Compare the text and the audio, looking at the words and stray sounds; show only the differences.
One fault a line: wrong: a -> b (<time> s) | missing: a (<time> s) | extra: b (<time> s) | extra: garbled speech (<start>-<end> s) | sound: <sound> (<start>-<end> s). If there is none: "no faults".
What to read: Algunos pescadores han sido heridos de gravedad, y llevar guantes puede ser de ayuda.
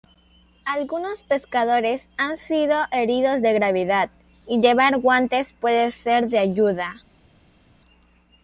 no faults